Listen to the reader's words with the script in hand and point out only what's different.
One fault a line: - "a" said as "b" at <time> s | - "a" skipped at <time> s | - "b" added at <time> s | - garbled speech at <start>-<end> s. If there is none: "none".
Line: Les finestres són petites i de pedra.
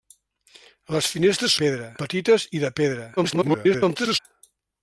- "són" said as "pedra" at 1.6 s
- garbled speech at 3.2-4.2 s